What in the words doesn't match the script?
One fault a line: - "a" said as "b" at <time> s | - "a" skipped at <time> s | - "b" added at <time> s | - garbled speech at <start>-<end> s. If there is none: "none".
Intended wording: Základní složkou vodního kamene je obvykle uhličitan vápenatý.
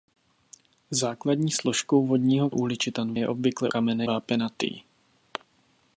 - "kamene" said as "uhličitan" at 2.5 s
- "uhličitan" said as "kamene" at 3.6 s